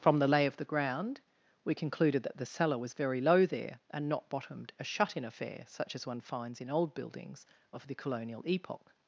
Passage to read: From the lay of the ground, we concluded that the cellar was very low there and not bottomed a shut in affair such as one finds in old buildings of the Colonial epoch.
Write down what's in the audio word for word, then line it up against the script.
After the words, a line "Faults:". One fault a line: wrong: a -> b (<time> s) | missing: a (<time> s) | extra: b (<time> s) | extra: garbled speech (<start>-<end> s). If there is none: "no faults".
From the lay of the ground, we concluded that the cellar was very low there and not bottomed a shut in affair such as one finds in old buildings of the Colonial epoch.
Faults:
no faults